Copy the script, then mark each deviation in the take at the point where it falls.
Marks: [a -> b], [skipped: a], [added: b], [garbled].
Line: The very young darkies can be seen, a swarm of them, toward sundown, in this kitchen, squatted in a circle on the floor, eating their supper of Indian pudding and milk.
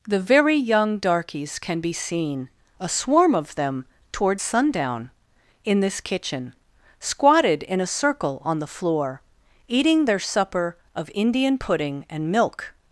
The very young darkies can be seen, a swarm of them, toward sundown, in this kitchen, squatted in a circle on the floor, eating their supper of Indian pudding and milk.